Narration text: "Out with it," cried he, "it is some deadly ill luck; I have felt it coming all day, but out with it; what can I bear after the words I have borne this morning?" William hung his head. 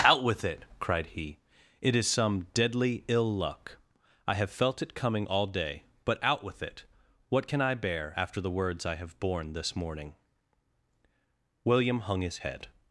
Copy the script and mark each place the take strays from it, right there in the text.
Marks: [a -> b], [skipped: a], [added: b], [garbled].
"Out with it," cried he, "it is some deadly ill luck; I have felt it coming all day, but out with it; what can I bear after the words I have borne this morning?" William hung his head.